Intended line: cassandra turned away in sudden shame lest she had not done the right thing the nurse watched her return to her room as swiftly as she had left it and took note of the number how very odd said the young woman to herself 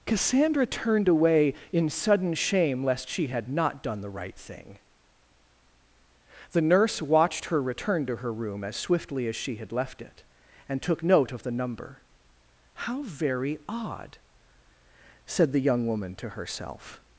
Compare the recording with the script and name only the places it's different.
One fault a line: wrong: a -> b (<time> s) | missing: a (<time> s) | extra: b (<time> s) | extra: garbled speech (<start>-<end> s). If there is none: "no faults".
no faults